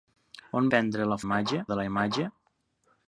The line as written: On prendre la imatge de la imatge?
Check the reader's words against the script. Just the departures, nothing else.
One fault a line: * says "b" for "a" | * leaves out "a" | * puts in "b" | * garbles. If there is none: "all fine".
all fine